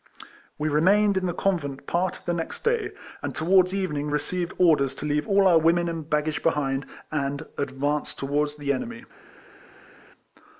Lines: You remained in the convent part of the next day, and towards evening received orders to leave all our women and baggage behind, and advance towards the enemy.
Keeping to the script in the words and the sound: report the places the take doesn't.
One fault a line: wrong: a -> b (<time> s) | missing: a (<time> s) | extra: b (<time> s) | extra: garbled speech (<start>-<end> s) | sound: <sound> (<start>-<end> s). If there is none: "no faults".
wrong: You -> We (0.6 s)